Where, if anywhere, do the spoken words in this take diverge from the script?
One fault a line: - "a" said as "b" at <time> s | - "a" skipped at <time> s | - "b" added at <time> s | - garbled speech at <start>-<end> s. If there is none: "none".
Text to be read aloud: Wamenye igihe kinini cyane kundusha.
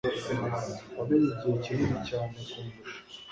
none